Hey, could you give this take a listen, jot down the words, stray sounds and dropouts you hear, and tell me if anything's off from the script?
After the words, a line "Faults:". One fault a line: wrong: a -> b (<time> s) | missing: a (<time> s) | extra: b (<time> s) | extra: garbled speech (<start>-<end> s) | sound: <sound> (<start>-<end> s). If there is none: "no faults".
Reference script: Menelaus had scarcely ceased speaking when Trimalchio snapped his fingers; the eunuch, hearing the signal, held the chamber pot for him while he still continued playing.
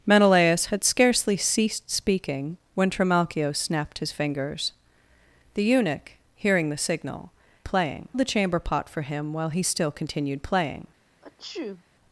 Menelaus had scarcely ceased speaking when Trimalchio snapped his fingers; the eunuch, hearing the signal, playing the chamber pot for him while he still continued playing.
Faults:
wrong: held -> playing (7.6 s)
sound: sneeze (11.2-11.8 s)